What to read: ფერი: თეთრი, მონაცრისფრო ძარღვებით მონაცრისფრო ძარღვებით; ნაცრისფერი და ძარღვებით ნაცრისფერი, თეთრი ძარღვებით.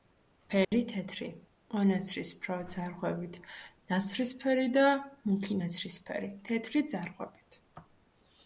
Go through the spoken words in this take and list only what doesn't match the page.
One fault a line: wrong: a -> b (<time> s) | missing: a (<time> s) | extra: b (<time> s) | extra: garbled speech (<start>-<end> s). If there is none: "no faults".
missing: მონაცრისფრო ძარღვებით (3.4 s)
wrong: ძარღვებით -> მუქი (5.3 s)